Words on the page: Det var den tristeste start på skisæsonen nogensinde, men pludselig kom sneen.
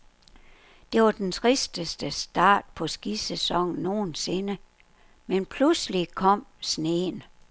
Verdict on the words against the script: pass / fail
pass